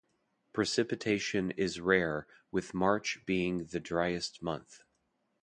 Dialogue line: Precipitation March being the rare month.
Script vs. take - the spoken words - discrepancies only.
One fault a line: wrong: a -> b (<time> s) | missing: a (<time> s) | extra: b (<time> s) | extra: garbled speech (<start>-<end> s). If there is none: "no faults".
extra: is rare with (1.5 s)
wrong: rare -> driest (3.8 s)